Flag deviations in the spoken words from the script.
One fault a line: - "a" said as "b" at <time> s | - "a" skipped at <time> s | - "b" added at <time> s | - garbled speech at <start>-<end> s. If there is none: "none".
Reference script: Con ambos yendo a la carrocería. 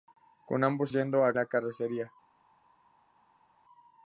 none